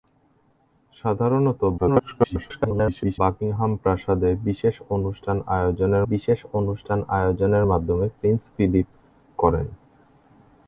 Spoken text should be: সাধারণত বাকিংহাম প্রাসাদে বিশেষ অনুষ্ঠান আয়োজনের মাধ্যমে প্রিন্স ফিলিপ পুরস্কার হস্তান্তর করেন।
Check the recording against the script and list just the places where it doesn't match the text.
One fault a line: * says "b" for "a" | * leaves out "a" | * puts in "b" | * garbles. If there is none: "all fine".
* garbles
* puts in "বিশেষ অনুষ্ঠান আয়োজনের"
* leaves out "পুরস্কার হস্তান্তর"